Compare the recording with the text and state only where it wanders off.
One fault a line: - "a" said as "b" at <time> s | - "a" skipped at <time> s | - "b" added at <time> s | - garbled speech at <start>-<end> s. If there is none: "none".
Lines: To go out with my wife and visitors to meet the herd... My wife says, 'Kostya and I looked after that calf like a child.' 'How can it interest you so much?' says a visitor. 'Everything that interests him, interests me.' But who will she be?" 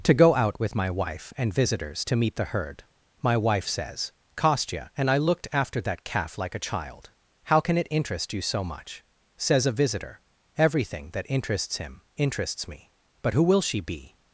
none